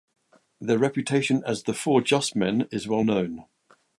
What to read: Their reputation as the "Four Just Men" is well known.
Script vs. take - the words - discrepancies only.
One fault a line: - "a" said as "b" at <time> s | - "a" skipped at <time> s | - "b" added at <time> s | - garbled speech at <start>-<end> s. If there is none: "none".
none